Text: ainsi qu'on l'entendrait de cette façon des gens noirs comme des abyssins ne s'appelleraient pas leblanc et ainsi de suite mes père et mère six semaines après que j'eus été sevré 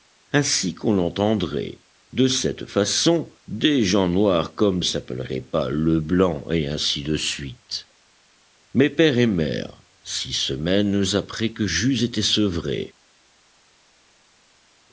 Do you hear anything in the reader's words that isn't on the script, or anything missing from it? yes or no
yes